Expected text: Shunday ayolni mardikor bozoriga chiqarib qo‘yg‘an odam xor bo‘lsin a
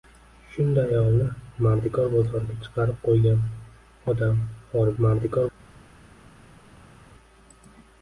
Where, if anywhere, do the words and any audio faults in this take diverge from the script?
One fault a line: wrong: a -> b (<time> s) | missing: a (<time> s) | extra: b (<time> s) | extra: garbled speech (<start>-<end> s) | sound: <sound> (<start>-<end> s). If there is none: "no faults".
wrong: bo‘lsin -> mardikor (5.0 s)